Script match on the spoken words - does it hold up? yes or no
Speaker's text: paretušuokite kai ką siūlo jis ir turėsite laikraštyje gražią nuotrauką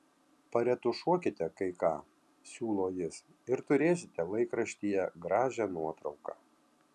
yes